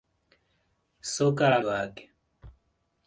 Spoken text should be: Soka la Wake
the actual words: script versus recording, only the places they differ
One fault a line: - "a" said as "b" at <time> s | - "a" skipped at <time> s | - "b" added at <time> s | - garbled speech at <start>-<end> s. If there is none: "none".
none